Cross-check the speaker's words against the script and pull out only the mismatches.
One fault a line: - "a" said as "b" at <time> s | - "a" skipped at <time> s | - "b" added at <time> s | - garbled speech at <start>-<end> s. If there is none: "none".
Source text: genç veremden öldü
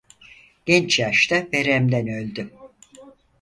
- "yaşta" added at 1.0 s